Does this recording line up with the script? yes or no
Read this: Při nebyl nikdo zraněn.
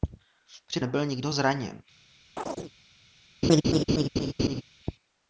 yes